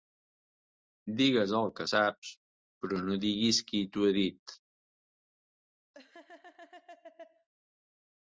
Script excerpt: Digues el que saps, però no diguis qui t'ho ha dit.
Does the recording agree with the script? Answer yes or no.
yes